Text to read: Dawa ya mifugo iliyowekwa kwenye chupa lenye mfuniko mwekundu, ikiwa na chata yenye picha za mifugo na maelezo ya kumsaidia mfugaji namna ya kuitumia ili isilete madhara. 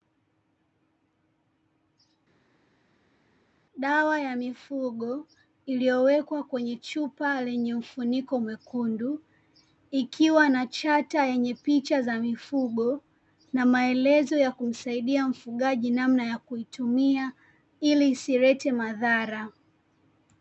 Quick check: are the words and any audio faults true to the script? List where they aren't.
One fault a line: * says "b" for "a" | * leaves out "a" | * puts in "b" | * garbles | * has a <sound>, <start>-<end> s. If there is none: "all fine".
all fine